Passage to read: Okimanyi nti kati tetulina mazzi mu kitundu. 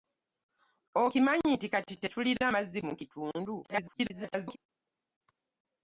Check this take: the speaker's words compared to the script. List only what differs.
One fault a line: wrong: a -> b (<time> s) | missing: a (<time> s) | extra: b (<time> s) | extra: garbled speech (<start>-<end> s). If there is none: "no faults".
extra: garbled speech (3.6-4.6 s)